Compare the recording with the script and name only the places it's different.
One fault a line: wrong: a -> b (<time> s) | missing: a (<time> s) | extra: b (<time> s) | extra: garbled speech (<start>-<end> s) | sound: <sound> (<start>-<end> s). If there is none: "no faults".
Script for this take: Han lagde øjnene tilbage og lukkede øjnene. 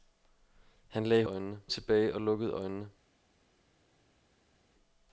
no faults